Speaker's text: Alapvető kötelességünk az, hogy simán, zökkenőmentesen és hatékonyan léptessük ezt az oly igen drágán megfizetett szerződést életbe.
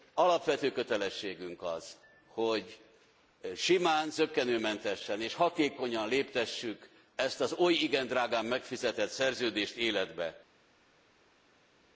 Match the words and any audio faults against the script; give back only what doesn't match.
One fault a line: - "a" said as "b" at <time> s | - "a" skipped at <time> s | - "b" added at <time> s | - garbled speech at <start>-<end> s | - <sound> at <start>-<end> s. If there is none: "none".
none